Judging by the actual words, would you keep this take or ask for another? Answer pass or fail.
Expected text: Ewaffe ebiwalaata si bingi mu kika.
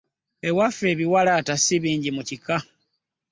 pass